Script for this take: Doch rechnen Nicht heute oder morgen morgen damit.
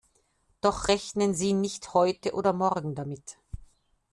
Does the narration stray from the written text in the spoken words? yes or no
yes